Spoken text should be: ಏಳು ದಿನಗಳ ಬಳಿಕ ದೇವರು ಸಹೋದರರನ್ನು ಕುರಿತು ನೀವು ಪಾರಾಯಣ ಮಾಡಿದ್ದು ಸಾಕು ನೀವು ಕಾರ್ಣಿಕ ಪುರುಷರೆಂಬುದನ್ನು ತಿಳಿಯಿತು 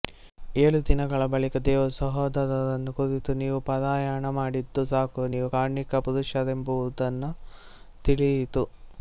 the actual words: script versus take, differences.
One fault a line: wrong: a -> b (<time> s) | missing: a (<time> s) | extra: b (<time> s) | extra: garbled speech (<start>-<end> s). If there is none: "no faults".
no faults